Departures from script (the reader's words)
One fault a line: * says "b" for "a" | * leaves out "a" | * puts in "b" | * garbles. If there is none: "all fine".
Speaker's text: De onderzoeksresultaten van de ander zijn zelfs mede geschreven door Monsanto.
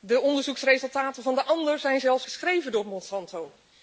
* leaves out "mede"